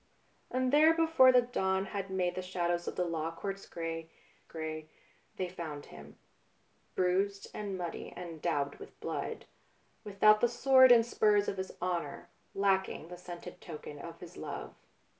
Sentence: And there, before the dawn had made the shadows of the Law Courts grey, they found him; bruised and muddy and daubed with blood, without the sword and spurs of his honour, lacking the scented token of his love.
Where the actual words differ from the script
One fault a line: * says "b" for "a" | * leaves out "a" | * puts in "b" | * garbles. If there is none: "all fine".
* puts in "grey"